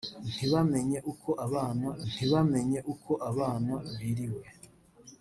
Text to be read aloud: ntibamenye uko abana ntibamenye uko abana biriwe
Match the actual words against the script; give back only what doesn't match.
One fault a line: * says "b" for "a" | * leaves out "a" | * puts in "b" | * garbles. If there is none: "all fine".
all fine